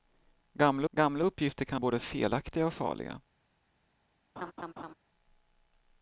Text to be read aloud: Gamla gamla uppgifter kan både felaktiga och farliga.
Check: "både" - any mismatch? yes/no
no